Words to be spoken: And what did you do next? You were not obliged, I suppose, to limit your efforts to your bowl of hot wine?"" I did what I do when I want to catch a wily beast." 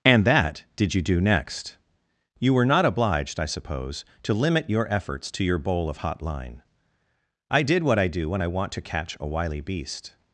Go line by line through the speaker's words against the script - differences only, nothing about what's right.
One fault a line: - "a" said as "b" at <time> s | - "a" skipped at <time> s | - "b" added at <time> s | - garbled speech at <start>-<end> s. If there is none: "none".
- "what" said as "that" at 0.2 s
- "wine" said as "line" at 6.2 s